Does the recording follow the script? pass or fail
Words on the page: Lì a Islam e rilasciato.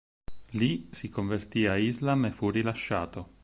fail